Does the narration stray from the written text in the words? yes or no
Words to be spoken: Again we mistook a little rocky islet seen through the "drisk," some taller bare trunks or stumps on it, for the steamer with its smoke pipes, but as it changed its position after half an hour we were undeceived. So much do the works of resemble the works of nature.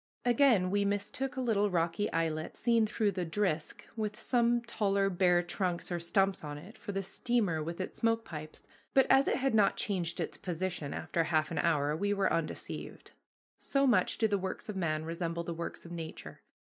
yes